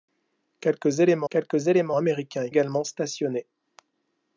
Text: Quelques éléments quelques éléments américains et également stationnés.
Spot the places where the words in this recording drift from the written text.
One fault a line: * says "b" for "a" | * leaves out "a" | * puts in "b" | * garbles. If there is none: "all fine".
all fine